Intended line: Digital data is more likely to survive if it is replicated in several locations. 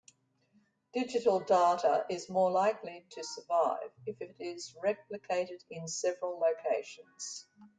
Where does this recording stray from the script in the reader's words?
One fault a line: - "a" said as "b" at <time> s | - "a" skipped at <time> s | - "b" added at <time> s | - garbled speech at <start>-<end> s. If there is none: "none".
none